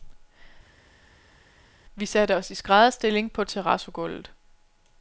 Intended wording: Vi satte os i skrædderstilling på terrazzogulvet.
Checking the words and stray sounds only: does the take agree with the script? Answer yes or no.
yes